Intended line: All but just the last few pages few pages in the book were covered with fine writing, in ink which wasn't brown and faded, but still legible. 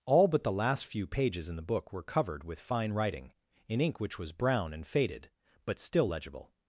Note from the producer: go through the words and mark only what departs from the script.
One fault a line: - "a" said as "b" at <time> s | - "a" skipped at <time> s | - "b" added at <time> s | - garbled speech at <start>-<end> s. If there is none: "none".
- "just" skipped at 0.4 s
- "few pages" skipped at 1.5 s
- "wasn't" said as "was" at 4.2 s